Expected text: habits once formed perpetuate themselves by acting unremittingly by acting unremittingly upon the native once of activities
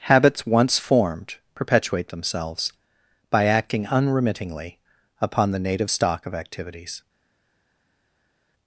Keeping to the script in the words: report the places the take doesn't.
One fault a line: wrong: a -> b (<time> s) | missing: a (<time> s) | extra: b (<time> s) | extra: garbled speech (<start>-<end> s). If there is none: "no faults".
missing: by acting unremittingly (4.8 s)
wrong: once -> stock (5.9 s)